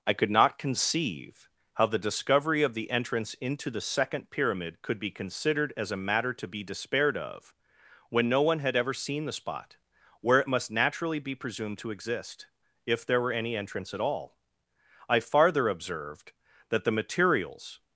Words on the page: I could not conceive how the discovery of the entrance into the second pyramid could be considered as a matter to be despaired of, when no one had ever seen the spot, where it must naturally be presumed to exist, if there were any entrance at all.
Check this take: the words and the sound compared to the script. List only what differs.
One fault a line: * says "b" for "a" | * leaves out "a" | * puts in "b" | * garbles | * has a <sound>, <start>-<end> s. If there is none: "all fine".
* puts in "I farther observed that the materials"